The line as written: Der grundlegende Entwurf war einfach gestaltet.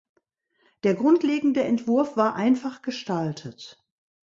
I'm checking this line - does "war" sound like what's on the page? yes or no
yes